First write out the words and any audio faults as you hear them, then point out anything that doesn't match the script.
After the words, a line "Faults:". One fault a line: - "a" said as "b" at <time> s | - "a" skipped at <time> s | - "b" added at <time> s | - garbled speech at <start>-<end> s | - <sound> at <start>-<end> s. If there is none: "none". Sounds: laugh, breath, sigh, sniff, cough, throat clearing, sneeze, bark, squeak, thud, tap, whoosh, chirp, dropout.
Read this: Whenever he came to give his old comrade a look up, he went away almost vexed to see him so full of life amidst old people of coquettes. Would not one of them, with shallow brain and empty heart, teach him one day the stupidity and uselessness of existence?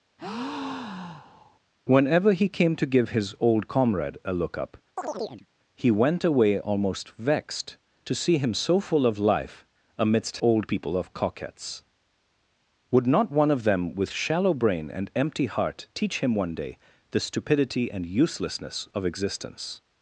Whenever he came to give his old comrade a look up, he went away almost vexed to see him so full of life amidst old people of coquettes. Would not one of them, with shallow brain and empty heart, teach him one day the stupidity and uselessness of existence?
Faults:
- breath at 0.2-1.6 s
- chirp at 5.0-5.5 s